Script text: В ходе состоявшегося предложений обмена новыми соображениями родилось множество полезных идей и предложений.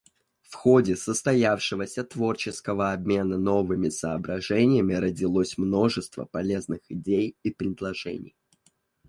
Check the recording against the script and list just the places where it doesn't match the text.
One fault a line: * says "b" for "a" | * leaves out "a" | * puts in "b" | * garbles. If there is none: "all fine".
* says "творческого" for "предложений"